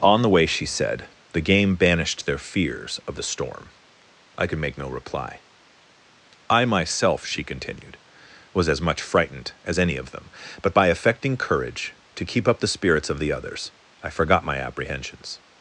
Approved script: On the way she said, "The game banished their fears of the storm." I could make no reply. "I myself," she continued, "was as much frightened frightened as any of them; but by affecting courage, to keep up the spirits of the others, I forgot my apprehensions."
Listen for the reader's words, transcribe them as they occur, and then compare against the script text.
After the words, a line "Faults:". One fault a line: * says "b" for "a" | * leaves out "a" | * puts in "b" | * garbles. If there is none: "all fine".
On the way she said, "The game banished their fears of the storm." I could make no reply. "I myself," she continued, "was as much frightened as any of them; but by affecting courage, to keep up the spirits of the others, I forgot my apprehensions."
Faults:
* leaves out "frightened"